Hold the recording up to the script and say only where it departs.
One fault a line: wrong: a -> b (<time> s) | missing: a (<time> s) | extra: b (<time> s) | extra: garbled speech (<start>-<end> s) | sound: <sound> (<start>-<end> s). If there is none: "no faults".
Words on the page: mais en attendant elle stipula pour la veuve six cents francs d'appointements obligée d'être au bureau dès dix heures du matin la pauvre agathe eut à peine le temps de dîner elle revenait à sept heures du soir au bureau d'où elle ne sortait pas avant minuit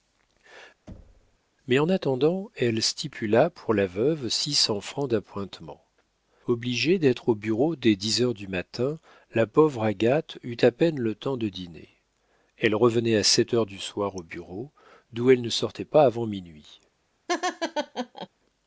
sound: thud (0.9-1.4 s)
sound: laugh (17.3-18.3 s)